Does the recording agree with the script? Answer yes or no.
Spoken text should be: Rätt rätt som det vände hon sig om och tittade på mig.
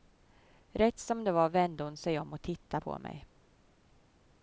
no